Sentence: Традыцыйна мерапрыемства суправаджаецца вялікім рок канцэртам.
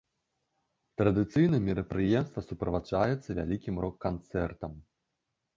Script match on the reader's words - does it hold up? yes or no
yes